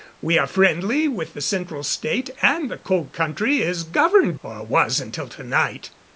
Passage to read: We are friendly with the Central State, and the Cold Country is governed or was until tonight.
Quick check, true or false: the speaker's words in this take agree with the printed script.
true